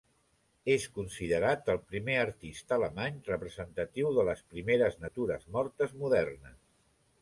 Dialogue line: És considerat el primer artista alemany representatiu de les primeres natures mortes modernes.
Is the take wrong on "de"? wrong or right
right